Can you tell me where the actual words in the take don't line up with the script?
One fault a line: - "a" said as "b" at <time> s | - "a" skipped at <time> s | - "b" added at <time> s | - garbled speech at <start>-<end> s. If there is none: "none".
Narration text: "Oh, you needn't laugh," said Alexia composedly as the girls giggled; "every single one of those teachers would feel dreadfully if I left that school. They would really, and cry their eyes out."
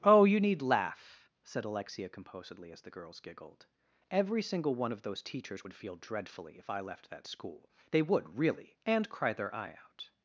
- "needn't" said as "need" at 0.4 s
- "eyes" said as "eye" at 9.5 s